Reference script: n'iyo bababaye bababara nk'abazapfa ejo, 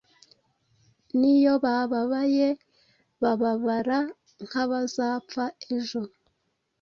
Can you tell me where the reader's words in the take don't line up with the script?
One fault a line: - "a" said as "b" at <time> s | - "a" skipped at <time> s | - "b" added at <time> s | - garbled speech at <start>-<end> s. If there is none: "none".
none